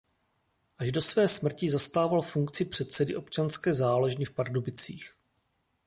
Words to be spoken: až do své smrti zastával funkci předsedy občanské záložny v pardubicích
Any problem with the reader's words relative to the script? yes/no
no